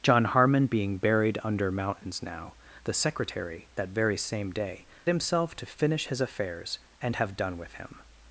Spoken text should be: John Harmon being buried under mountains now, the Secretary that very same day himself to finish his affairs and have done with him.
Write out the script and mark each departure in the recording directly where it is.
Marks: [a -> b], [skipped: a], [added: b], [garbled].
John Harmon being buried under mountains now, the Secretary that very same day himself to finish his affairs and have done with him.